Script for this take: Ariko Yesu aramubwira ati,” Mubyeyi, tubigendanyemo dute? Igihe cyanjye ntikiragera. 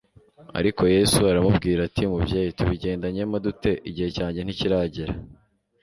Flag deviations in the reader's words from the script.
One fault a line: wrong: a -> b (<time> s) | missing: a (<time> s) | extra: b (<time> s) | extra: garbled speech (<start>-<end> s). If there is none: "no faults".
no faults